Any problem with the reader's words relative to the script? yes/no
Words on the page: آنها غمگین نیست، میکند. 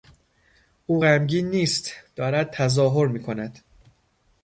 yes